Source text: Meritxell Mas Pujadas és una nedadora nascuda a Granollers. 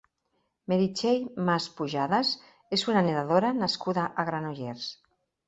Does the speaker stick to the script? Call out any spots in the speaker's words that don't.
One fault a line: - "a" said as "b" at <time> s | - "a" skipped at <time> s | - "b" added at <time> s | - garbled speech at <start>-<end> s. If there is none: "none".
none